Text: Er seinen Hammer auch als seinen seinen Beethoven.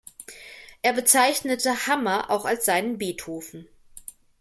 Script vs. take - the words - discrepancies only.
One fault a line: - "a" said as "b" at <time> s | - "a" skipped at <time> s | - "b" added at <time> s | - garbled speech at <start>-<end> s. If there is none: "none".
- "seinen" said as "bezeichnete" at 0.9 s
- "seinen" skipped at 3.0 s